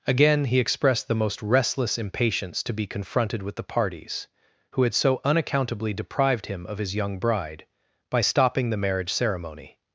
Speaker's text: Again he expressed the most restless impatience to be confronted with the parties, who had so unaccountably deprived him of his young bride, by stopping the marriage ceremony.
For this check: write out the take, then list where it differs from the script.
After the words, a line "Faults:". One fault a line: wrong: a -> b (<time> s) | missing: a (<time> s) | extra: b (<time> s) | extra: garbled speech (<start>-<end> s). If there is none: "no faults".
Again he expressed the most restless impatience to be confronted with the parties, who had so unaccountably deprived him of his young bride, by stopping the marriage ceremony.
Faults:
no faults